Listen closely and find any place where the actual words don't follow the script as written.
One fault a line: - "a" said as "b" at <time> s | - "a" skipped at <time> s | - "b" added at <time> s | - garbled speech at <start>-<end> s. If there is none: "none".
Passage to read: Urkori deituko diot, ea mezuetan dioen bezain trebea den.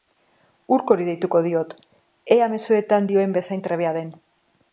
none